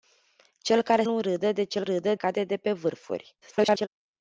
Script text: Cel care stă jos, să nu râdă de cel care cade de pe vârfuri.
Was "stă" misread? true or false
true